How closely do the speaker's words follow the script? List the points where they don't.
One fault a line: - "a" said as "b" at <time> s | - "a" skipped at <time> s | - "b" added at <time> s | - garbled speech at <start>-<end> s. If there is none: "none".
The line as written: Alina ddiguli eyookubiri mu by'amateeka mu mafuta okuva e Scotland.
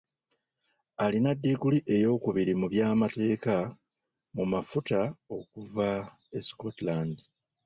none